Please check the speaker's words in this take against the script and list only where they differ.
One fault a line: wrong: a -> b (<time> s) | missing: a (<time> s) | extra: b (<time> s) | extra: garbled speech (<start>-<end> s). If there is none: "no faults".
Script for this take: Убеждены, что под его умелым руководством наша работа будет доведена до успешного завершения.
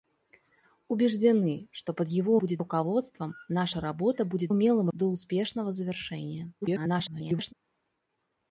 wrong: умелым -> будет (2.3 s)
wrong: доведена -> умелым (4.5 s)
extra: garbled speech (6.6-7.5 s)